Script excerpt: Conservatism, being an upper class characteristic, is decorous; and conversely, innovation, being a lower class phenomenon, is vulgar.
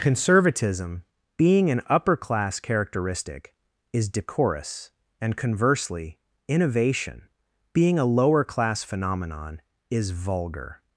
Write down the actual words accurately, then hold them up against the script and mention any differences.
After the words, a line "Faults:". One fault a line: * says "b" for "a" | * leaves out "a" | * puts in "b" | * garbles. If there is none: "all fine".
Conservatism, being an upper class characteristic, is decorous; and conversely, innovation, being a lower class phenomenon, is vulgar.
Faults:
all fine